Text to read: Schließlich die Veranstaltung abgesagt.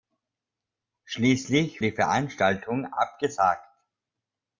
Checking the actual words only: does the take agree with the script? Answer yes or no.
yes